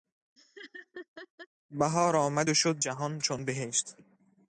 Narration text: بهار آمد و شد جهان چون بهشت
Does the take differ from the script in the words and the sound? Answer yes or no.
yes